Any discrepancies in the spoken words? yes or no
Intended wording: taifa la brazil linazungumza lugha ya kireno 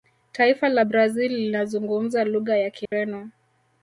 no